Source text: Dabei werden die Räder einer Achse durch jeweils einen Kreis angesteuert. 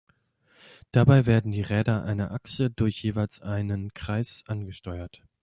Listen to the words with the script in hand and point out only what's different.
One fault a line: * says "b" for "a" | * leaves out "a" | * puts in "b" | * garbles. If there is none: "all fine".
all fine